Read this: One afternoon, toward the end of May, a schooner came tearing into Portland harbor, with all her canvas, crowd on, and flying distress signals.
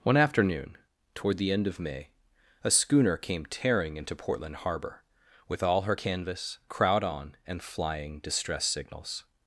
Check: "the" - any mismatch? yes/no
no